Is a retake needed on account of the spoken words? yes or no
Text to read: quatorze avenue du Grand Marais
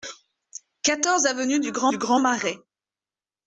yes